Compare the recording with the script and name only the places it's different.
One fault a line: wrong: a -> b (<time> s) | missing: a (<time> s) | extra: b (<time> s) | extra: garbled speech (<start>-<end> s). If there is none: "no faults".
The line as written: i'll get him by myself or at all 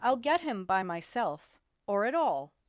no faults